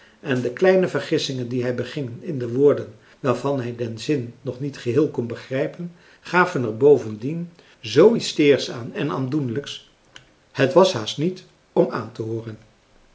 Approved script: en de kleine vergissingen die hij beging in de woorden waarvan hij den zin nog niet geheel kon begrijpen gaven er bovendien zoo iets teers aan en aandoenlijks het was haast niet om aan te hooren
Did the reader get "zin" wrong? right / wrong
right